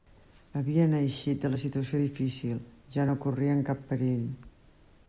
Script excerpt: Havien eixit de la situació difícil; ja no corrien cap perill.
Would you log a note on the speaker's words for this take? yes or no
no